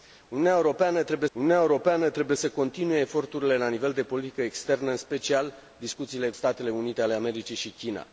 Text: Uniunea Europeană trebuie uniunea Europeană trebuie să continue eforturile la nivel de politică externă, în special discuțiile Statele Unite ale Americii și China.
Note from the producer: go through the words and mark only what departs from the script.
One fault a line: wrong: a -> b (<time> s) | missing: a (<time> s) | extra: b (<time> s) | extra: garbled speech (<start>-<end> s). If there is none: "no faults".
no faults